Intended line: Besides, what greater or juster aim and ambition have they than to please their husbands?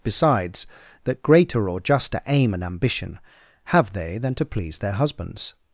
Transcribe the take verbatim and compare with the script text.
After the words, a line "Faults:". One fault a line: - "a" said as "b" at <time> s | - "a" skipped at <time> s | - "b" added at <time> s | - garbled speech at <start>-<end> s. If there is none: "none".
Besides, that greater or juster aim and ambition have they than to please their husbands?
Faults:
- "what" said as "that" at 1.0 s